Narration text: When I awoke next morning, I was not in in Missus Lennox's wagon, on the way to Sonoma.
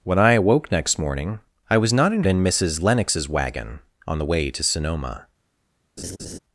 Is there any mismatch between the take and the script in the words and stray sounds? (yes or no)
yes